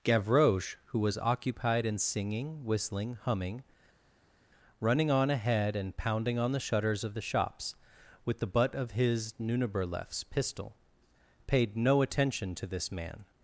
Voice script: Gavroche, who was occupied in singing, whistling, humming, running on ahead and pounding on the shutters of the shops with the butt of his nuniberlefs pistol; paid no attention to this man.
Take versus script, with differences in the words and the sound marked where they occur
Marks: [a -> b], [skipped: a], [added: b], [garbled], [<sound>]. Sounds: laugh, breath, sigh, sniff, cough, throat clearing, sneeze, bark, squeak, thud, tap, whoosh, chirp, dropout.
Gavroche, who was occupied in singing, whistling, humming, running on ahead and pounding on the shutters of the shops with the butt of his nuniberlefs pistol; paid no attention to this man.